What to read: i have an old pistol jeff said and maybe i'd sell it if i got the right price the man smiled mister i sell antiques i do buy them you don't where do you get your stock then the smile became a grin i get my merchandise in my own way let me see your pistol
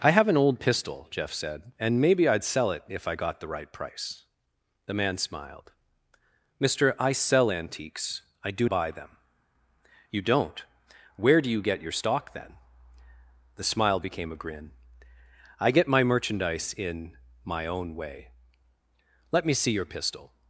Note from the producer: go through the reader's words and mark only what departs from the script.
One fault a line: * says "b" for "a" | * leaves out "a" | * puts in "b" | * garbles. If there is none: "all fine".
all fine